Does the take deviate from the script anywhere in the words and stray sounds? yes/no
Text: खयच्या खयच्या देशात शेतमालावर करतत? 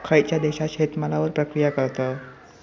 yes